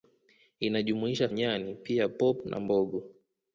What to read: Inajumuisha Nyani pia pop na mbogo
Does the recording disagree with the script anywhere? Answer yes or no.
no